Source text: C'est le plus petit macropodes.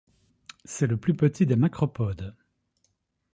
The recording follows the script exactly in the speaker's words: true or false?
false